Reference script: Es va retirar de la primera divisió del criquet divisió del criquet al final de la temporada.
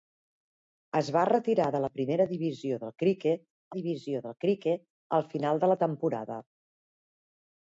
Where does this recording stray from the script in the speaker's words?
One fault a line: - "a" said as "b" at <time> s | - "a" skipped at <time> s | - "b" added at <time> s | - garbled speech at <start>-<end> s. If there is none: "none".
none